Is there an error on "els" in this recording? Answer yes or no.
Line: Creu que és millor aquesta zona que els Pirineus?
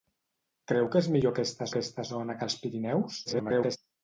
no